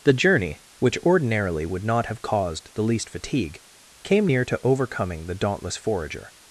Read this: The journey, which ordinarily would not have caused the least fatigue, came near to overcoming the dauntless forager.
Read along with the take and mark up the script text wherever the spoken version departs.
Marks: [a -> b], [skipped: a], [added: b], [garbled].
The journey, which ordinarily would not have caused the least fatigue, came near to overcoming the dauntless forager.